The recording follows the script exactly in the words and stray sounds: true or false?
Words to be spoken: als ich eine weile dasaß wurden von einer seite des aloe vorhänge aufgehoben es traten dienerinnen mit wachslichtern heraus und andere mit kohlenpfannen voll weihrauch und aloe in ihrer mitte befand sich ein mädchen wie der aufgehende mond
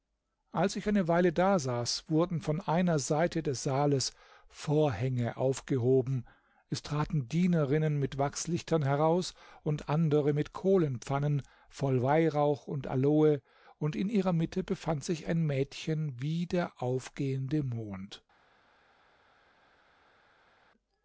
false